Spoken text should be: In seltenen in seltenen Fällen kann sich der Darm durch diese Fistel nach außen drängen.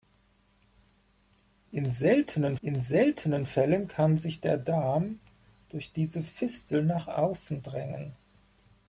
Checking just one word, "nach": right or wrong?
right